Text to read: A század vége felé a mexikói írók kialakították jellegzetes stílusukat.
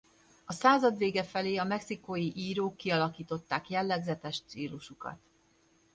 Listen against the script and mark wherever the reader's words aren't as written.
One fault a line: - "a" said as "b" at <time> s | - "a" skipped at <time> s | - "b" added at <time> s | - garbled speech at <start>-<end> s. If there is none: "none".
none